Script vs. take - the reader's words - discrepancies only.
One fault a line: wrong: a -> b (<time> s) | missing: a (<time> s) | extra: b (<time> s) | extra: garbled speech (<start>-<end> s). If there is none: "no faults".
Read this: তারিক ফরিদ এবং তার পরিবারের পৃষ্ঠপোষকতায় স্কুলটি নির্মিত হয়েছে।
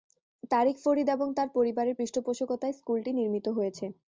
no faults